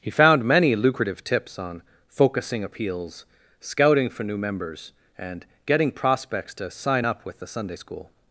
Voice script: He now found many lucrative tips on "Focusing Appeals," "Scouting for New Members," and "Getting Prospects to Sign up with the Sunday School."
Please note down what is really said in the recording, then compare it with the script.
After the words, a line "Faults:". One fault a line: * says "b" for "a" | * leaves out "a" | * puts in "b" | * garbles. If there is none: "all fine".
He found many lucrative tips on "Focusing Appeals," "Scouting for New Members," and "Getting Prospects to Sign up with the Sunday School."
Faults:
* leaves out "now"